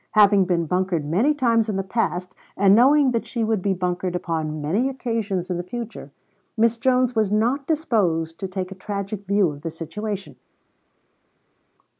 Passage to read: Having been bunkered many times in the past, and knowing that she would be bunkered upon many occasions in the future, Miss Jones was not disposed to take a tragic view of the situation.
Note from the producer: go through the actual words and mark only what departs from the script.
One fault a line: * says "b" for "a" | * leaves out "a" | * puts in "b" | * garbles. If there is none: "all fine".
all fine